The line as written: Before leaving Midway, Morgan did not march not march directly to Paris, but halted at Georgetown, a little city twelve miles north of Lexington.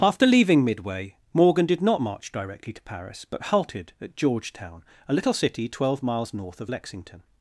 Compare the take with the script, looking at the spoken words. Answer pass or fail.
fail